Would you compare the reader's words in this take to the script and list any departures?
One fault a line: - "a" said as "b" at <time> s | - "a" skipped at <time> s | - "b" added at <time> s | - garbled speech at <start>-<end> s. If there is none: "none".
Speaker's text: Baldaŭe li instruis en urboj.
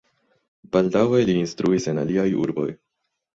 - "aliaj" added at 2.0 s